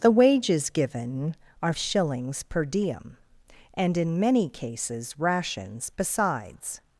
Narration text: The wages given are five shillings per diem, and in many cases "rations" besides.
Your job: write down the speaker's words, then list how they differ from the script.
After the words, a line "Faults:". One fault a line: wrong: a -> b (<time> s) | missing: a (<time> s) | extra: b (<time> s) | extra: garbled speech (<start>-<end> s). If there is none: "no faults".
The wages given are shillings per diem, and in many cases "rations" besides.
Faults:
missing: five (1.7 s)